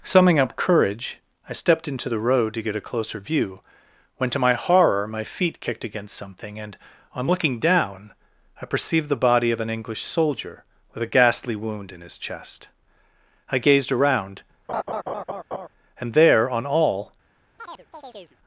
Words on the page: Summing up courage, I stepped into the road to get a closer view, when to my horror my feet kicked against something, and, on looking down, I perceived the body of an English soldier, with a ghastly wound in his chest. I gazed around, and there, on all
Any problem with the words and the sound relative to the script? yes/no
yes